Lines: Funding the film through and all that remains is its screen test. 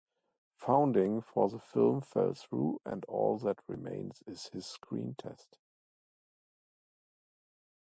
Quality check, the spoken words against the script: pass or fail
fail